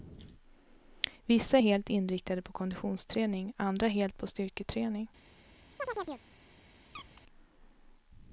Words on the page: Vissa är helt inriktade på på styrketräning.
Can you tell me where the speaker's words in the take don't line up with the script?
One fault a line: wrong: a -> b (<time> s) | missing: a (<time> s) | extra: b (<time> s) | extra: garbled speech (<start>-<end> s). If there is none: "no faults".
extra: konditionsträning andra helt (2.5 s)